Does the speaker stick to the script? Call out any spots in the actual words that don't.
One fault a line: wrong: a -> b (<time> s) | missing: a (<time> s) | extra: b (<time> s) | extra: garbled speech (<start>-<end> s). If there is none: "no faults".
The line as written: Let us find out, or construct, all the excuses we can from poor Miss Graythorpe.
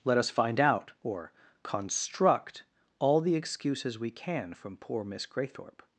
no faults